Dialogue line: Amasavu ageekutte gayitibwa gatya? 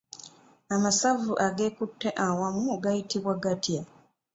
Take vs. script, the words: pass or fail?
fail